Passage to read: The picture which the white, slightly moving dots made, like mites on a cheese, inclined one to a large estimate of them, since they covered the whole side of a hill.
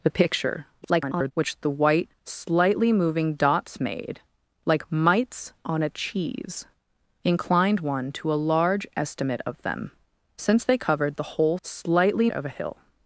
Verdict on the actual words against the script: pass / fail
fail